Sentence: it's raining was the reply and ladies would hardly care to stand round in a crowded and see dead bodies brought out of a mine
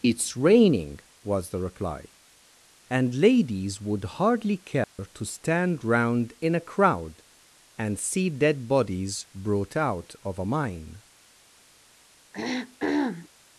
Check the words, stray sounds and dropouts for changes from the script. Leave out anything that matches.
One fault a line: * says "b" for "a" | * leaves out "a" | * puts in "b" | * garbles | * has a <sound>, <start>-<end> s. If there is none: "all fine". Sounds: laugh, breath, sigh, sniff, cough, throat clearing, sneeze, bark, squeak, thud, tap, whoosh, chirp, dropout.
* has a dropout, 4.8-5.0 s
* says "crowd" for "crowded"
* has a throat clearing, 12.3-13.3 s